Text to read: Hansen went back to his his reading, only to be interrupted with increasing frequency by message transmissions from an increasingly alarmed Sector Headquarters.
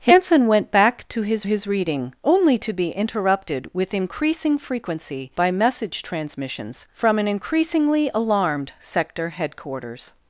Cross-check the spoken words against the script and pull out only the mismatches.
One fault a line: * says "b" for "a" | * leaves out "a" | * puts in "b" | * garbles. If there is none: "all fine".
all fine